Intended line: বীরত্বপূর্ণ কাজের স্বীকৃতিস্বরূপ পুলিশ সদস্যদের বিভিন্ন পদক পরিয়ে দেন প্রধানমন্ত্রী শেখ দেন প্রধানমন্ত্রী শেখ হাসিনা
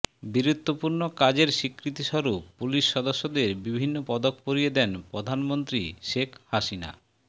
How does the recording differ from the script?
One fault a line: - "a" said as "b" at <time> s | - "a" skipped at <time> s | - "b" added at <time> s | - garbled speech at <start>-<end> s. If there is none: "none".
- "দেন প্রধানমন্ত্রী শেখ" skipped at 6.3 s